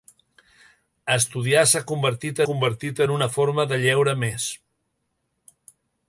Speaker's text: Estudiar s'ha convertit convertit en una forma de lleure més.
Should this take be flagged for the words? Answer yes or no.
no